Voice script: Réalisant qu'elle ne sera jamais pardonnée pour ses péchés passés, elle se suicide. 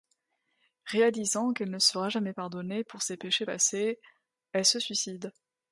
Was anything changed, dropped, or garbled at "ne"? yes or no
no